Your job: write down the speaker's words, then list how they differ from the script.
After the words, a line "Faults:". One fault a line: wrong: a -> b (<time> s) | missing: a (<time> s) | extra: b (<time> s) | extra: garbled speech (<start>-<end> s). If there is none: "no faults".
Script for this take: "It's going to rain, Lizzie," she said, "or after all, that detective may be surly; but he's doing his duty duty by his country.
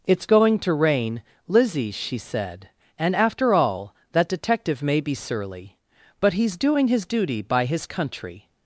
"It's going to rain, Lizzie," she said, "and after all, that detective may be surly; but he's doing his duty by his country.
Faults:
wrong: or -> and (3.0 s)
missing: duty (7.4 s)